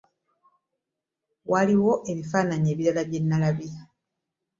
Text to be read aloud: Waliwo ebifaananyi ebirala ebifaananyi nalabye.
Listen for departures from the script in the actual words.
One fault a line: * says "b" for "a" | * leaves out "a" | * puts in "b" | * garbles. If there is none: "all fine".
* says "bye" for "ebifaananyi"